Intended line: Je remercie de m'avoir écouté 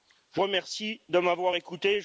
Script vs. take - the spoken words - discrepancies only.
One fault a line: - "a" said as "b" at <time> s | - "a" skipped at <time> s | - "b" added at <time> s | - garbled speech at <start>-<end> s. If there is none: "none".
none